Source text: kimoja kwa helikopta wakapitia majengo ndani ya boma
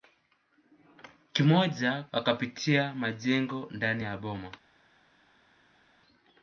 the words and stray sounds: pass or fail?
fail